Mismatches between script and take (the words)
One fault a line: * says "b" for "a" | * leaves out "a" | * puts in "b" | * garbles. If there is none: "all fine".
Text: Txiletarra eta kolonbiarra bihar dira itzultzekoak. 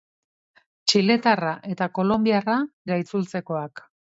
* leaves out "bihar"